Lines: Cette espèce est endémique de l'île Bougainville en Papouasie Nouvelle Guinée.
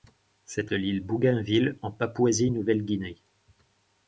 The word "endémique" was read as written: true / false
false